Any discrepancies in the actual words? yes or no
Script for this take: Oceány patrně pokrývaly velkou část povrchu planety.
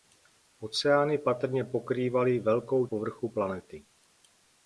yes